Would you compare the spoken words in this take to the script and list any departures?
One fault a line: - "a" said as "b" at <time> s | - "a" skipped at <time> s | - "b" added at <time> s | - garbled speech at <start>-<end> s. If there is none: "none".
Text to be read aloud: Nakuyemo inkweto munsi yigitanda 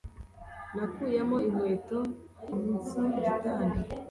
none